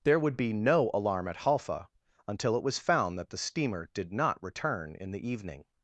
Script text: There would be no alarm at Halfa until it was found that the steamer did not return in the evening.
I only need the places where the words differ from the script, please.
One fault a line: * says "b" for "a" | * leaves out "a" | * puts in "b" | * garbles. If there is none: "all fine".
all fine